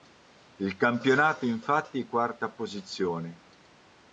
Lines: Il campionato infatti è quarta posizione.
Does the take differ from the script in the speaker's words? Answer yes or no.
no